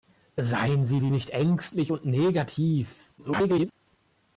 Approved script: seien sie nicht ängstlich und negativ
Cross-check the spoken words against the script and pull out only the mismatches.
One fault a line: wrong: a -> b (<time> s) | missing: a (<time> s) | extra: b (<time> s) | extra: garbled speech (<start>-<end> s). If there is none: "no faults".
extra: sie (1.0 s)
extra: garbled speech (3.2-3.7 s)